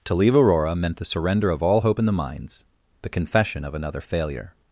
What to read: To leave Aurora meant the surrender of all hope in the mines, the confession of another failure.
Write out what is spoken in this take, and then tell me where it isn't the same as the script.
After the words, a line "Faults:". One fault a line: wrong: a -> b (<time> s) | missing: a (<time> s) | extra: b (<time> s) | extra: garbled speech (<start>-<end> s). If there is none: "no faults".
To leave Aurora meant the surrender of all hope in the mines, the confession of another failure.
Faults:
no faults